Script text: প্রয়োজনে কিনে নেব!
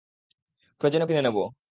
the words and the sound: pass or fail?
pass